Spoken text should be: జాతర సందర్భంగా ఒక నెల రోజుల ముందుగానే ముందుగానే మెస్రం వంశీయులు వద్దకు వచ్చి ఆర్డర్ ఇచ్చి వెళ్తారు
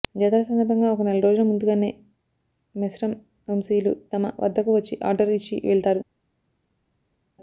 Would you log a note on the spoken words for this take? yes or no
yes